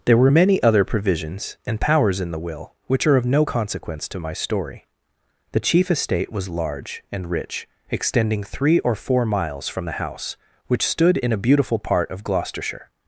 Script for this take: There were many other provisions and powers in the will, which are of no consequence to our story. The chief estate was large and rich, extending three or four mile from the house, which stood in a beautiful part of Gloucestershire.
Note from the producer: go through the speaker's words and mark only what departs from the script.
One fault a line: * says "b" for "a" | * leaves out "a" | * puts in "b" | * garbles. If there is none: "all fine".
* says "my" for "our"
* says "miles" for "mile"